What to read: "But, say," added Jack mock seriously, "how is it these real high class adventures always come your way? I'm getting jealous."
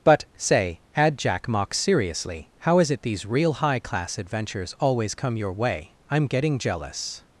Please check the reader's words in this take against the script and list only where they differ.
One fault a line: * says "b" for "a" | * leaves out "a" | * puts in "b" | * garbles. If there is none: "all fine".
* says "add" for "added"